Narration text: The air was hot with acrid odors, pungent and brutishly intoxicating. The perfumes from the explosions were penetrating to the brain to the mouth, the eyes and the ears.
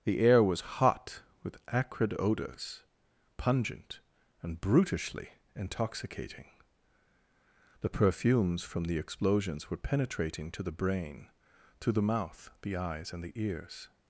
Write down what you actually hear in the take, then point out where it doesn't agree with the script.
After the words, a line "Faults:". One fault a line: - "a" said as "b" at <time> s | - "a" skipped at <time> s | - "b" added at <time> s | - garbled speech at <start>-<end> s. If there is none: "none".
The air was hot with acrid odors, pungent and brutishly intoxicating. The perfumes from the explosions were penetrating to the brain to the mouth, the eyes and the ears.
Faults:
none